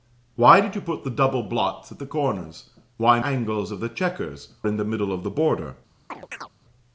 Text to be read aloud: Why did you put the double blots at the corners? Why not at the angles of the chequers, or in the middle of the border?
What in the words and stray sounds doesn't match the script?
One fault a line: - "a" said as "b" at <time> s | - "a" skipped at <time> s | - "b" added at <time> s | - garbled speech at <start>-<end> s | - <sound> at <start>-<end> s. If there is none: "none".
- "not at the" skipped at 3.2 s
- "or" skipped at 4.5 s
- chirp at 6.1-6.5 s